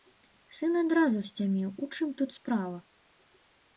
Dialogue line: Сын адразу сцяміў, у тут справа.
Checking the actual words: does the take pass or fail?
fail